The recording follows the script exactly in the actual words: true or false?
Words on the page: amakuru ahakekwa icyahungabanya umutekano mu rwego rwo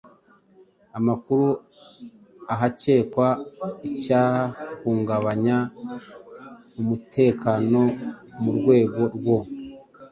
true